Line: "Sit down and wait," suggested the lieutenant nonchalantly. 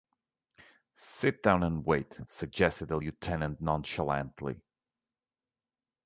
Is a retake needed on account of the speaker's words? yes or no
no